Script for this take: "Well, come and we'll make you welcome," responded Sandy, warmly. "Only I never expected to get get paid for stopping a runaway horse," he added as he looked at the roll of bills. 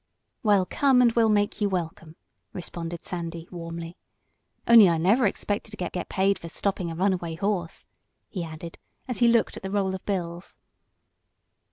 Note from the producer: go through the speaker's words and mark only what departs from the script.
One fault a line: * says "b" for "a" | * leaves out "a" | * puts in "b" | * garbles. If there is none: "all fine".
all fine